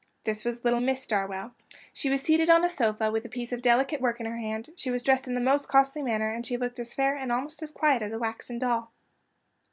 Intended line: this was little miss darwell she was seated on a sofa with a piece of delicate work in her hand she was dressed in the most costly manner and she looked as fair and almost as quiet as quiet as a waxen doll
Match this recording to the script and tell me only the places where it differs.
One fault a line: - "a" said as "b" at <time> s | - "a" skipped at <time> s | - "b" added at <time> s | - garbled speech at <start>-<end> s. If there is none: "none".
- "quiet as" skipped at 8.1 s